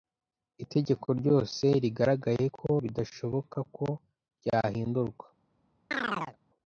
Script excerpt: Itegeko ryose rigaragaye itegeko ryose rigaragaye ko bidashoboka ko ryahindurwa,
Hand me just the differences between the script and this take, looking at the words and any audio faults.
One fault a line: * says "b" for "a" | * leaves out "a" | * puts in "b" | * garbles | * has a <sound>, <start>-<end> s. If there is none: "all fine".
* leaves out "itegeko ryose rigaragaye"
* has a chirp, 5.9-6.4 s